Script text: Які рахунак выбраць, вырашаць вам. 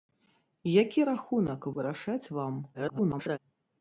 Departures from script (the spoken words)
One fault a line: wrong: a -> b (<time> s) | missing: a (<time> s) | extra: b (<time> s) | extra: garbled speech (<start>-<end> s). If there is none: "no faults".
missing: выбраць (1.7 s)
extra: garbled speech (2.7-3.4 s)